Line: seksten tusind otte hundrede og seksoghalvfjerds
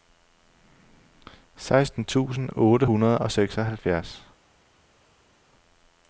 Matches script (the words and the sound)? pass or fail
pass